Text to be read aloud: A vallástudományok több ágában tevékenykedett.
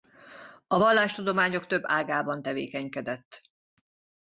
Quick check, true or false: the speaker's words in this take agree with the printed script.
true